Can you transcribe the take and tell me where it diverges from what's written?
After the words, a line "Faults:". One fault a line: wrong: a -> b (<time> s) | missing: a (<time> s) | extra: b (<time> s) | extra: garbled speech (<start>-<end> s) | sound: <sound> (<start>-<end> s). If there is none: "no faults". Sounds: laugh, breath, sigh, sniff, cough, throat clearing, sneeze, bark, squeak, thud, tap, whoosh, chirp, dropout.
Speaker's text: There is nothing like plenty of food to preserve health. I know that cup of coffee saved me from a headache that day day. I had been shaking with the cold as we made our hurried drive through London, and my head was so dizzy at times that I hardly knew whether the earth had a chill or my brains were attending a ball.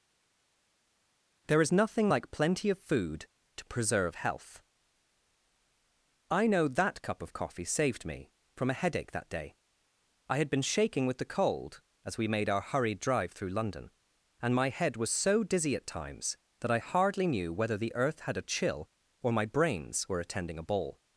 There is nothing like plenty of food to preserve health. I know that cup of coffee saved me from a headache that day. I had been shaking with the cold as we made our hurried drive through London, and my head was so dizzy at times that I hardly knew whether the earth had a chill or my brains were attending a ball.
Faults:
missing: day (9.6 s)